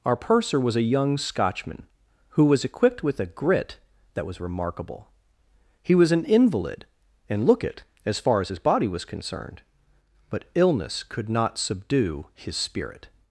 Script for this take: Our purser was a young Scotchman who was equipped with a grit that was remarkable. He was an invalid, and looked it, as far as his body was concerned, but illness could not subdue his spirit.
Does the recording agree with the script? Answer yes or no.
no